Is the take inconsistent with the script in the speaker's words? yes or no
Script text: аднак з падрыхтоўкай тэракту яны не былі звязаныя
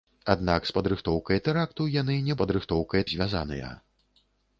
yes